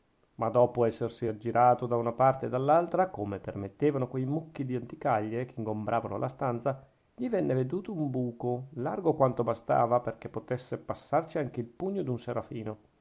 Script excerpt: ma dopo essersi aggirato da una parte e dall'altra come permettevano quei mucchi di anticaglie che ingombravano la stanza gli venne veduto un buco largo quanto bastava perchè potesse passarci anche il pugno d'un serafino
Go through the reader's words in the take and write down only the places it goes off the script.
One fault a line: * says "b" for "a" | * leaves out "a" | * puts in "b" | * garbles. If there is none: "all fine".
all fine